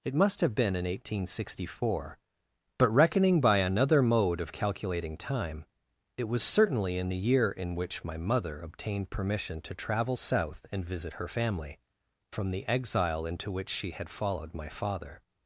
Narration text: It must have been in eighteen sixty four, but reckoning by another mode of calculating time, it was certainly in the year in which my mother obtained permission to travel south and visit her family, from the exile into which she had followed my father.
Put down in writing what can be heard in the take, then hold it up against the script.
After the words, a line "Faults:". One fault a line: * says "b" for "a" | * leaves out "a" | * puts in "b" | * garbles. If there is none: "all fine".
It must have been in eighteen sixty four, but reckoning by another mode of calculating time, it was certainly in the year in which my mother obtained permission to travel south and visit her family, from the exile into which she had followed my father.
Faults:
all fine